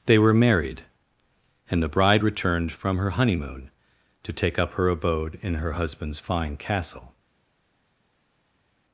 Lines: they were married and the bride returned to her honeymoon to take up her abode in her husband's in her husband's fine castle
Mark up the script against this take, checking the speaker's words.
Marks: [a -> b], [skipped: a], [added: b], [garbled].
they were married and the bride returned [to -> from] her honeymoon to take up her abode in her husband's [skipped: in her husband's] fine castle